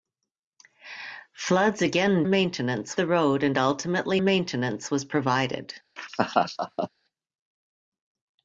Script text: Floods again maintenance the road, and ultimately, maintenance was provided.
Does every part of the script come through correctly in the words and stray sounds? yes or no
no